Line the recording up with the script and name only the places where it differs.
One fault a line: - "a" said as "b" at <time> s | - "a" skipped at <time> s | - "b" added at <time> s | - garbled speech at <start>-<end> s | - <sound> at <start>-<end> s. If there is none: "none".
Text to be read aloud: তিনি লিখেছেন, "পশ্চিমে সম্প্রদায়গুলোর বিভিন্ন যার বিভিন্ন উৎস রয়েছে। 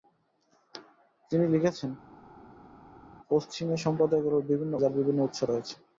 none